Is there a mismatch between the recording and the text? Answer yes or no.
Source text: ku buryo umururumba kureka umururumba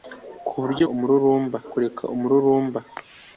no